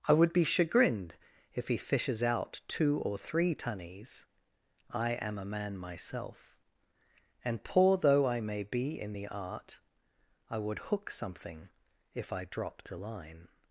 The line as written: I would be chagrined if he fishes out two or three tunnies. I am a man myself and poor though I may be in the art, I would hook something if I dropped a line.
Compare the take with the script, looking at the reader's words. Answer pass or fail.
pass